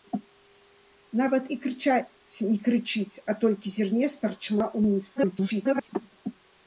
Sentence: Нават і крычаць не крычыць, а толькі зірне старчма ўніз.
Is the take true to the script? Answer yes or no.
no